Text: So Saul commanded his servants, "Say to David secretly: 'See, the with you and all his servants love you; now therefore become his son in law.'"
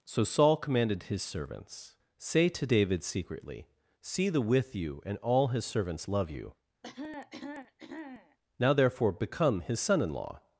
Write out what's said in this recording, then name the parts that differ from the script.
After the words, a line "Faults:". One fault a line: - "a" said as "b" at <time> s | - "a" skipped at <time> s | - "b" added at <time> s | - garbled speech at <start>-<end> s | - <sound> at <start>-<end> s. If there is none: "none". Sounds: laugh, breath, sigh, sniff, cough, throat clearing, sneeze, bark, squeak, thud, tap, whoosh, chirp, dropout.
So Saul commanded his servants, "Say to David secretly: 'See, the with you and all his servants love you; now therefore become his son in law.'"
Faults:
- cough at 6.8-8.4 s